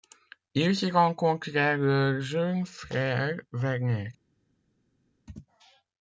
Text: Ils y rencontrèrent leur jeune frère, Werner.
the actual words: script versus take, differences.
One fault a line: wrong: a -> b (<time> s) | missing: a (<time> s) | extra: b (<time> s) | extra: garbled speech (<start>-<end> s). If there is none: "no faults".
no faults